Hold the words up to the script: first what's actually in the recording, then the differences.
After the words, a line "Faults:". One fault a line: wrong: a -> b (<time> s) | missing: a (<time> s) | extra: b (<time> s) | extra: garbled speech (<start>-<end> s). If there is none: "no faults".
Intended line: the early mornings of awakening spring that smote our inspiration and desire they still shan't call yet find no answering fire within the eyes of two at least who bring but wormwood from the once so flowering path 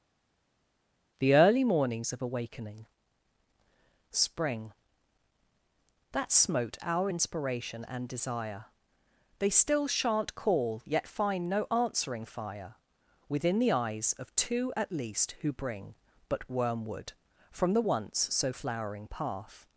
the early mornings of awakening spring that smote our inspiration and desire they still shan't call yet find no answering fire within the eyes of two at least who bring but wormwood from the once so flowering path
Faults:
no faults